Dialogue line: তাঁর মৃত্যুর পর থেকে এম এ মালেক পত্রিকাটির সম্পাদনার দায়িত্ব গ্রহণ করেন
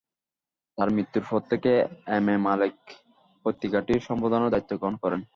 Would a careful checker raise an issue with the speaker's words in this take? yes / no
no